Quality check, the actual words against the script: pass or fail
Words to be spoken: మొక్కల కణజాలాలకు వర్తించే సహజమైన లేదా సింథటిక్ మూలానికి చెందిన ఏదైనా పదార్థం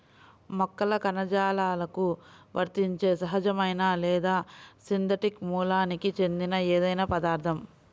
pass